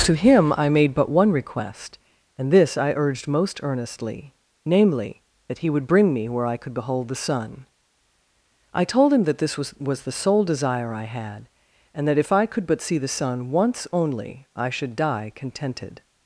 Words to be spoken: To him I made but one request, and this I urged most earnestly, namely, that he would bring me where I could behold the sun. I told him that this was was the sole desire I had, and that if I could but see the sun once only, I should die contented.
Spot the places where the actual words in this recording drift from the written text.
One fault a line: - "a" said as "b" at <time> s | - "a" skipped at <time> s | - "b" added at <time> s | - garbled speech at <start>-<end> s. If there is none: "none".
none